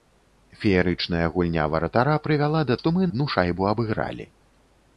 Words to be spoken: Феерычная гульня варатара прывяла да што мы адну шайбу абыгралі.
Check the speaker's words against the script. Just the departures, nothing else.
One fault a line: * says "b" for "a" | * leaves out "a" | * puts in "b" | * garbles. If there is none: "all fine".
all fine